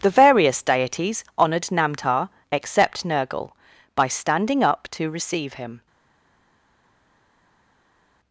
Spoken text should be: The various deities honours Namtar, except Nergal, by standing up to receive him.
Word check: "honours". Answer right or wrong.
wrong